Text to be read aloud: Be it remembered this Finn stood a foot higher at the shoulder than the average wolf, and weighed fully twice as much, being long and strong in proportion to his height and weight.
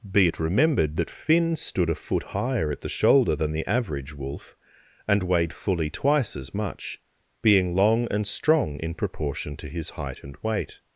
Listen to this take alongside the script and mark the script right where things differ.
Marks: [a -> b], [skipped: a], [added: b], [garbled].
Be it remembered [this -> that] Finn stood a foot higher at the shoulder than the average wolf, and weighed fully twice as much, being long and strong in proportion to his height and weight.